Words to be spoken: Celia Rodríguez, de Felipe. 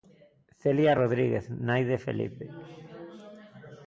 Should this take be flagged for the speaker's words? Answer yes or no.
yes